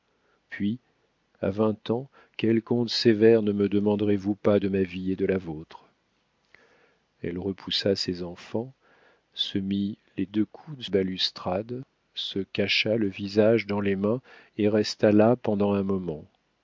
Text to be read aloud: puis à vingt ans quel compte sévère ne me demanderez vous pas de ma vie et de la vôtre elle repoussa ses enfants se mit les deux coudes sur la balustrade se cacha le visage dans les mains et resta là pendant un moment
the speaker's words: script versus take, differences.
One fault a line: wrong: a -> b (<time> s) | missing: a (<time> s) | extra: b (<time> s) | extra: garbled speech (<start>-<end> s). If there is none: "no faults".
no faults